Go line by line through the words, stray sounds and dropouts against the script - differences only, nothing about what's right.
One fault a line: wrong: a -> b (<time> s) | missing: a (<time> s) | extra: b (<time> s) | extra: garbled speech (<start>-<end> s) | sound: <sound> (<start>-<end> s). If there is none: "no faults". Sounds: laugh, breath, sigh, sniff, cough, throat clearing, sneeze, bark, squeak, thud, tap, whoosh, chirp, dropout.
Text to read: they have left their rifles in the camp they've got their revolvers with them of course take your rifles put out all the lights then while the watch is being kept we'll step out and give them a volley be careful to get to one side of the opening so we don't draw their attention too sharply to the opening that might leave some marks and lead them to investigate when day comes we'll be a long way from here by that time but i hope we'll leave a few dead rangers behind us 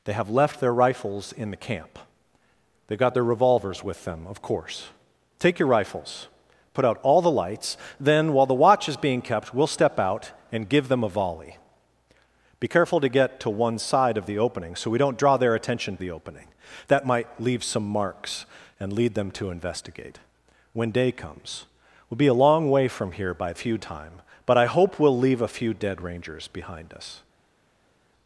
missing: too sharply to (16.0 s)
wrong: that -> few (23.5 s)